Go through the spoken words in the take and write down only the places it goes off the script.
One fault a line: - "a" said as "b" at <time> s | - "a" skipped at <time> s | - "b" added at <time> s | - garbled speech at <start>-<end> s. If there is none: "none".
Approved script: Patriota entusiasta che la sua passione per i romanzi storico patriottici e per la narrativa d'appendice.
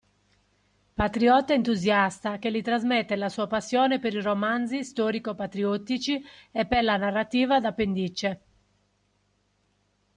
- "gli trasmette" added at 2.5 s